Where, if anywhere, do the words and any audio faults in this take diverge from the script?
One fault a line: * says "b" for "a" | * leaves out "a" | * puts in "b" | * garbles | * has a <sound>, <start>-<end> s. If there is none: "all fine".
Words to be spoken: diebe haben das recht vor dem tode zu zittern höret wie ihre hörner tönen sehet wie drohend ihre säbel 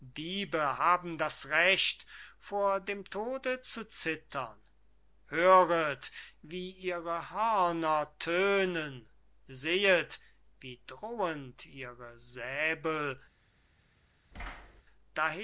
* has a thud, 14.3-14.8 s